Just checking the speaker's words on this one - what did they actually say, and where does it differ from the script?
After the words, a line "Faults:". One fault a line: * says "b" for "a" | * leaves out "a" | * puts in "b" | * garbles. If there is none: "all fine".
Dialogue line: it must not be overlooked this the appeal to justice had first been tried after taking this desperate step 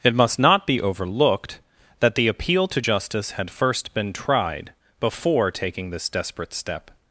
it must not be overlooked that the appeal to justice had first been tried before taking this desperate step
Faults:
* says "that" for "this"
* says "before" for "after"